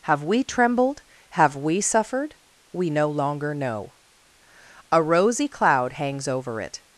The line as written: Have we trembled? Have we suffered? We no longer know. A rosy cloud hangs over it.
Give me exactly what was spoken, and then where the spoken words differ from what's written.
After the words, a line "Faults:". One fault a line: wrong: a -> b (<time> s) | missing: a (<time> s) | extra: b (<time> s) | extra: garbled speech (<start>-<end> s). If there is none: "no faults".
Have we trembled? Have we suffered? We no longer know. A rosy cloud hangs over it.
Faults:
no faults